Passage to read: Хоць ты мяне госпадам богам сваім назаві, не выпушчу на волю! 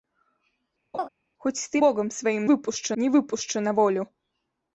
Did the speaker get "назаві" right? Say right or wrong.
wrong